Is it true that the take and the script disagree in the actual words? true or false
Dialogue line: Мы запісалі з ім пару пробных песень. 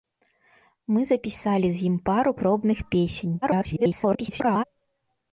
true